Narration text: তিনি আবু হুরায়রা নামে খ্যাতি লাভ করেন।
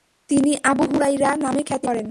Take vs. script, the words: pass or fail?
fail